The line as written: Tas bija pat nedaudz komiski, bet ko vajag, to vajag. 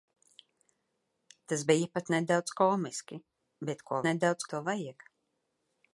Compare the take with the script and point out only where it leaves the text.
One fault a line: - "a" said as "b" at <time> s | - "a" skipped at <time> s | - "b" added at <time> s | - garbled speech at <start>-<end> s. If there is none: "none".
- "vajag" said as "nedaudz" at 4.1 s